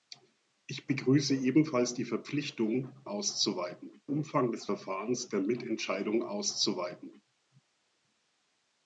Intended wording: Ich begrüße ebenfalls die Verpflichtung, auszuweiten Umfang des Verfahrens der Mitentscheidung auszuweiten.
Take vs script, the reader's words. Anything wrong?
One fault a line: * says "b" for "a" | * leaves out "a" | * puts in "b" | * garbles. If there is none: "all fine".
all fine